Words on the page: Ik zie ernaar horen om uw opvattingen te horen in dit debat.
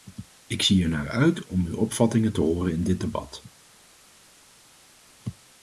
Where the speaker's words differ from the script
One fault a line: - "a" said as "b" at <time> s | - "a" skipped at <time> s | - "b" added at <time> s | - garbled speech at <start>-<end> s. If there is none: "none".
- "horen" said as "uit" at 1.1 s